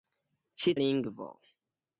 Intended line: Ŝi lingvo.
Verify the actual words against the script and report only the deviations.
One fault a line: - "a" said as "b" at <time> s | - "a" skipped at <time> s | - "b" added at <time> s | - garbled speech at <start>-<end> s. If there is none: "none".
none